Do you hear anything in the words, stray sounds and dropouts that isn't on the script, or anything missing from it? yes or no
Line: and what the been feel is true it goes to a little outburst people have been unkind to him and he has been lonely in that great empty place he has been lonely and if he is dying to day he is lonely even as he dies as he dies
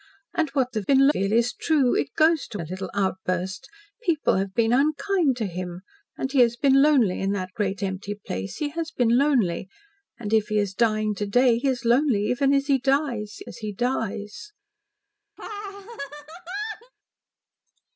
yes